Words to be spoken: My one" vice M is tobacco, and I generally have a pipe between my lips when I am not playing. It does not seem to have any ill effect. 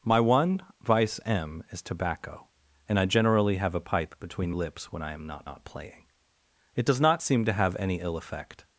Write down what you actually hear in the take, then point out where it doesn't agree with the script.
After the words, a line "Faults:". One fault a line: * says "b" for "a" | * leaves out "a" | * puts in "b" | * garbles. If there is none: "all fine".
My one" vice M is tobacco, and I generally have a pipe between lips when I am not not playing. It does not seem to have any ill effect.
Faults:
* leaves out "my"
* puts in "not"